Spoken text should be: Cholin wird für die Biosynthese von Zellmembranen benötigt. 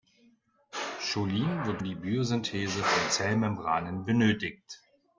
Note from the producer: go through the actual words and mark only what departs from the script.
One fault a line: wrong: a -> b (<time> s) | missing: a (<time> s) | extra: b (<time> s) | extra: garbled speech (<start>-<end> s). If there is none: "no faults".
missing: für (1.8 s)